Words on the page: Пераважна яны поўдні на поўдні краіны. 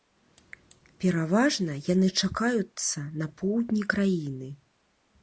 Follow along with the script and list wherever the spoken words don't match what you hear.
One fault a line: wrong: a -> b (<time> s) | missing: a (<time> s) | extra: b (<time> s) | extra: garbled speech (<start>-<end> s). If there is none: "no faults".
wrong: поўдні -> чакаюцца (2.2 s)